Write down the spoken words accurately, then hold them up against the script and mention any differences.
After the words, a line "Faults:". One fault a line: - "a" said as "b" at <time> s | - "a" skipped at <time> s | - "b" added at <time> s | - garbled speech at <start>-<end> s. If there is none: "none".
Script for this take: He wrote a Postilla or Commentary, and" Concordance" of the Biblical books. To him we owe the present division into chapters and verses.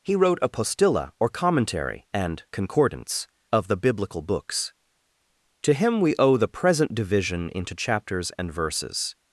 He wrote a Postilla or Commentary, and" Concordance" of the Biblical books. To him we owe the present division into chapters and verses.
Faults:
none